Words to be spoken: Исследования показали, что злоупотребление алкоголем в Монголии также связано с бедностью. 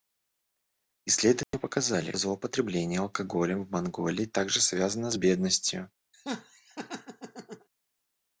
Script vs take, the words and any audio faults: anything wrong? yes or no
yes